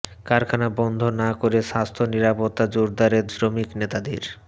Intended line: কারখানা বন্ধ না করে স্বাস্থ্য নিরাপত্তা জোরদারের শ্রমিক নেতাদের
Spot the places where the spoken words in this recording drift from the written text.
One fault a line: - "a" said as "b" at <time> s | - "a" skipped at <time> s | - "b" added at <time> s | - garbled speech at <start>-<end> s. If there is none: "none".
none